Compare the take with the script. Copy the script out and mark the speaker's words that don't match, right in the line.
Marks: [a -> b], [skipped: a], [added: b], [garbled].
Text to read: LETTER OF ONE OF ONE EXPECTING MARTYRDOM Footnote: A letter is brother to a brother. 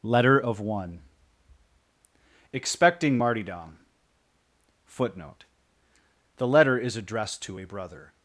LETTER OF ONE [skipped: OF ONE] EXPECTING MARTYRDOM Footnote: [A -> The] letter is [brother -> addressed] to a brother.